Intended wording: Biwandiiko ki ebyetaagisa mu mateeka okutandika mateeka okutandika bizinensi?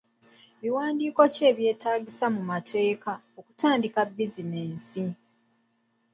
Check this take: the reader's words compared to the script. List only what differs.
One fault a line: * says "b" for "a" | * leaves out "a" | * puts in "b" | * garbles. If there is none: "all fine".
* leaves out "mateeka okutandika"